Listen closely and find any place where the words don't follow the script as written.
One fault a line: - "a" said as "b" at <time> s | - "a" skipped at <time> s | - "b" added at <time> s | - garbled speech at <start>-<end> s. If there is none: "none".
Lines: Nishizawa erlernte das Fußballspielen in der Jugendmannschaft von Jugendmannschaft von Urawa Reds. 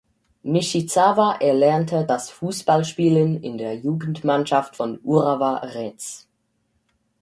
- "Jugendmannschaft von" skipped at 5.0 s